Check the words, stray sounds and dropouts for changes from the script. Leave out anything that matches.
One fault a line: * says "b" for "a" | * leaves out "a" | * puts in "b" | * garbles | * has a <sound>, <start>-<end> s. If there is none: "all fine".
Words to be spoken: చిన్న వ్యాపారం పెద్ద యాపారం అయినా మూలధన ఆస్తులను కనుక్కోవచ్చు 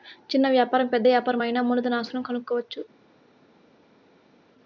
all fine